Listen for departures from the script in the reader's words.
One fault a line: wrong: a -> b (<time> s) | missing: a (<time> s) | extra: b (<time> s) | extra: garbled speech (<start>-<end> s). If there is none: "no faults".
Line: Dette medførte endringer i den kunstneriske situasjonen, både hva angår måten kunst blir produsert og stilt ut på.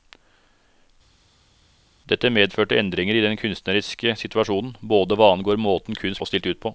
missing: blir produsert (6.2 s)